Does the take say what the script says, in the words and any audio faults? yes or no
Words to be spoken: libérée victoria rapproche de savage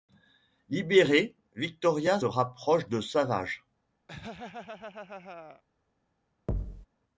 no